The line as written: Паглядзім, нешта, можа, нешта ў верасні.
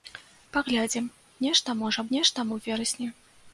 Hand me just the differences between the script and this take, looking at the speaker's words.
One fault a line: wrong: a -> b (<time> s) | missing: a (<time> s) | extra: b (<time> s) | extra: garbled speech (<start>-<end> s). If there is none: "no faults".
no faults